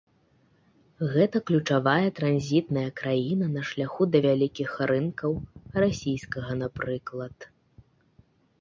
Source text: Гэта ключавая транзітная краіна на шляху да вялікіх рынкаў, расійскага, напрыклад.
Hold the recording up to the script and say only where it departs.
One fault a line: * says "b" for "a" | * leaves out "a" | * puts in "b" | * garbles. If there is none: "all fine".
all fine